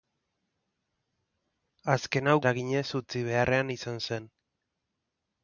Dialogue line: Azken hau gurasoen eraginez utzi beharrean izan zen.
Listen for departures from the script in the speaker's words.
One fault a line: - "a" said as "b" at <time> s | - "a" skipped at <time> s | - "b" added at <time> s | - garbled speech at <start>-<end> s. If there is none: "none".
- "gurasoen" skipped at 2.4 s